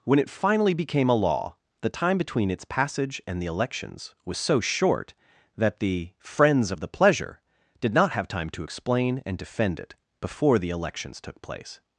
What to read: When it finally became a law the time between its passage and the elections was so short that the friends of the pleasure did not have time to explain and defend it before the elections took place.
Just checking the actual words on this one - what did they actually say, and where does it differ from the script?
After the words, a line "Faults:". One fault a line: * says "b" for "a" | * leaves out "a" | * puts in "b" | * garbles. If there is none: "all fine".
When it finally became a law the time between its passage and the elections was so short that the friends of the pleasure did not have time to explain and defend it before the elections took place.
Faults:
all fine